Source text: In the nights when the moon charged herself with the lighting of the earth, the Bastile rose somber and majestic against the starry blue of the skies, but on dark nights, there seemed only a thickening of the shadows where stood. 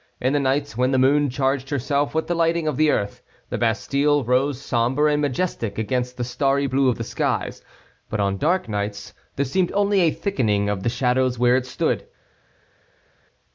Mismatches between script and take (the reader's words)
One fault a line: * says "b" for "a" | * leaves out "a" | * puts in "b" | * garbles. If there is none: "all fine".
* puts in "it"